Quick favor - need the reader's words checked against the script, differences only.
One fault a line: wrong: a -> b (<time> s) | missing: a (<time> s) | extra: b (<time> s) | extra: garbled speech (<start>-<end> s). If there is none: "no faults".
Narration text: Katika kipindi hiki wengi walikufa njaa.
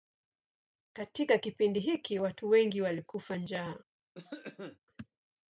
extra: watu (2.2 s)